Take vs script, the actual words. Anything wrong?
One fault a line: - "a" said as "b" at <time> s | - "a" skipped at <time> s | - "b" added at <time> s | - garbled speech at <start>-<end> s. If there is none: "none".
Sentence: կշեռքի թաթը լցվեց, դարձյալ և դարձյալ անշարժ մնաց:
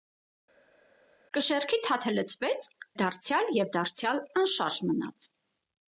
none